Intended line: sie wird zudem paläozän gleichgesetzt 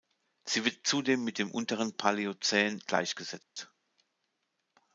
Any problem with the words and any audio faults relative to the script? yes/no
yes